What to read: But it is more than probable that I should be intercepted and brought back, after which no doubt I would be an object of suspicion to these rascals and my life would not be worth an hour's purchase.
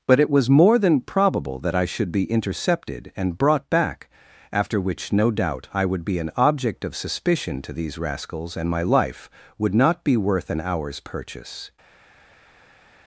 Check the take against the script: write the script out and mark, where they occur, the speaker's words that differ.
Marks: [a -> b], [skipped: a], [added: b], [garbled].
But it [is -> was] more than probable that I should be intercepted and brought back, after which no doubt I would be an object of suspicion to these rascals and my life would not be worth an hour's purchase.